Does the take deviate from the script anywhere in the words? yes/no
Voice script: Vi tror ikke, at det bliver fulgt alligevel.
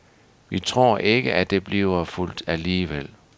no